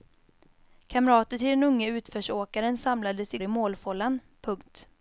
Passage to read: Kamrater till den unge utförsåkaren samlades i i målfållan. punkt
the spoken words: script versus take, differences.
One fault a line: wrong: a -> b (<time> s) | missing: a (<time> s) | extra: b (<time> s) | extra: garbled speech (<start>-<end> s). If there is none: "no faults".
no faults